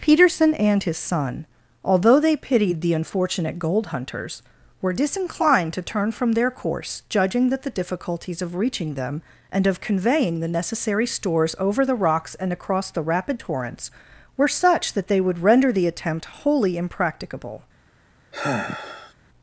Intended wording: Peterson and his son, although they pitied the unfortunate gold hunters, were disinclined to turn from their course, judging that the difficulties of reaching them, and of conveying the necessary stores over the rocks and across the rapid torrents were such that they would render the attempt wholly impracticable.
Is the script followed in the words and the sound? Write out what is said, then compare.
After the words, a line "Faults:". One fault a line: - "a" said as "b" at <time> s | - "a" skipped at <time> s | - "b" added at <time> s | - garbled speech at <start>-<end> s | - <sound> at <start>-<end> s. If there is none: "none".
Peterson and his son, although they pitied the unfortunate gold hunters, were disinclined to turn from their course, judging that the difficulties of reaching them, and of conveying the necessary stores over the rocks and across the rapid torrents were such that they would render the attempt wholly impracticable.
Faults:
- sigh at 18.3-19.1 s